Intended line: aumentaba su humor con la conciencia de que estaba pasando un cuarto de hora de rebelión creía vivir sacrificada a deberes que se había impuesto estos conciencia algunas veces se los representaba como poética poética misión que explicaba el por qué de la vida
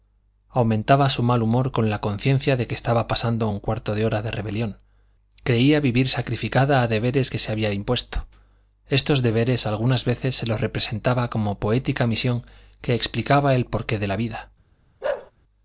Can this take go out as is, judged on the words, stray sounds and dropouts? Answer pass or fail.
fail